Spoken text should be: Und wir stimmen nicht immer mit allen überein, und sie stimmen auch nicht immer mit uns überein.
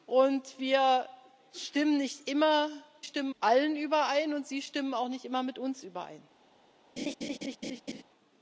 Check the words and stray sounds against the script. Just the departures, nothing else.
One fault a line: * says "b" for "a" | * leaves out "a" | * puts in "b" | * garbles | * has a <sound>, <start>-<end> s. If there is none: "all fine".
* says "stimmen" for "mit"
* has a laugh, 7.0-8.0 s